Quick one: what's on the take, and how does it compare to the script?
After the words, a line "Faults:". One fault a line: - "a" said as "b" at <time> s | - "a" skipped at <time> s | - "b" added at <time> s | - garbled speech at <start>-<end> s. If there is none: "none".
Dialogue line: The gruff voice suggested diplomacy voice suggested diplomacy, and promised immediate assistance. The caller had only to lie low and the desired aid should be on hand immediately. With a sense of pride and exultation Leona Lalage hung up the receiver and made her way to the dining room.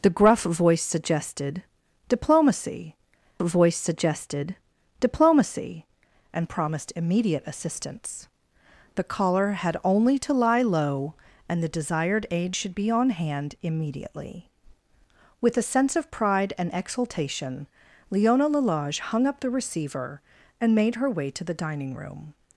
The gruff voice suggested diplomacy voice suggested diplomacy, and promised immediate assistance. The caller had only to lie low and the desired aid should be on hand immediately. With a sense of pride and exultation Leona Lalage hung up the receiver and made her way to the dining room.
Faults:
none